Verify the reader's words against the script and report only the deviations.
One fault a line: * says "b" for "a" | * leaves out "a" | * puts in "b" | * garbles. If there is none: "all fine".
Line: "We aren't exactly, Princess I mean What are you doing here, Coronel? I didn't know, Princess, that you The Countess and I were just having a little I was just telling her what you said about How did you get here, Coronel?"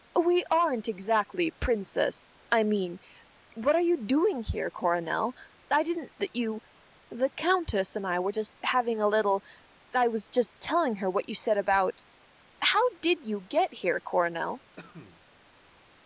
* leaves out "know Princess"